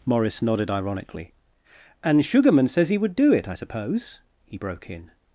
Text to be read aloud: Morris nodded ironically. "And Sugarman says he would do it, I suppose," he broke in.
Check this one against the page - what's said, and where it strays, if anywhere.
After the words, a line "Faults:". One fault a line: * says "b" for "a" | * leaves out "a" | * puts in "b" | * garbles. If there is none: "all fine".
Morris nodded ironically. "And Sugarman says he would do it, I suppose," he broke in.
Faults:
all fine